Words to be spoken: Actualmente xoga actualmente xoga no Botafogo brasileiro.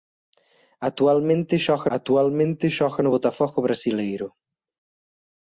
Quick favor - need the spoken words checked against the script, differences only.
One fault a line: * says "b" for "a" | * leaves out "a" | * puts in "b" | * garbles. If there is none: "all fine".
all fine